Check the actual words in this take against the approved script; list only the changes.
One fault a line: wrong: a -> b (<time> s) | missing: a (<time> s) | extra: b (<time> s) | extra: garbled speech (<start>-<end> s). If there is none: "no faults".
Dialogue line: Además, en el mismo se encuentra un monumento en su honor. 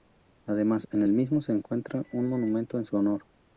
no faults